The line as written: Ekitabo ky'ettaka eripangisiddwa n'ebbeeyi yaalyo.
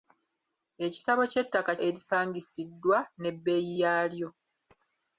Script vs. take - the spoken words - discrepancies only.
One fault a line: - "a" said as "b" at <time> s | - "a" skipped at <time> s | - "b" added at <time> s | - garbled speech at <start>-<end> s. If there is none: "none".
none